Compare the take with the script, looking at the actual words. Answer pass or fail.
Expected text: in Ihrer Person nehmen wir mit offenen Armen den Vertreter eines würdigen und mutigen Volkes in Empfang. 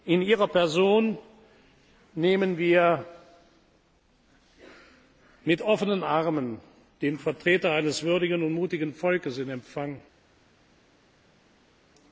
pass